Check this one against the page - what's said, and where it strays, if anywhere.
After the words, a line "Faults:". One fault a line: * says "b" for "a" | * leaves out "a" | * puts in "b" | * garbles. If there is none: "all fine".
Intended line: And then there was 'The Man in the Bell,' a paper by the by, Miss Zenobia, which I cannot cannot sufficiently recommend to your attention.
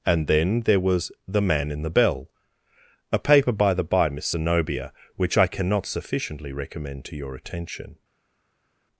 And then there was 'The Man in the Bell,' a paper by the by, Miss Zenobia, which I cannot sufficiently recommend to your attention.
Faults:
* leaves out "cannot"